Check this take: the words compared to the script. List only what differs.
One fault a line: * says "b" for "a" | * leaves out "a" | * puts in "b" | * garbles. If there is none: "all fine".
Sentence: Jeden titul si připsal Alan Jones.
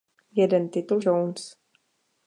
* leaves out "si připsal Alan"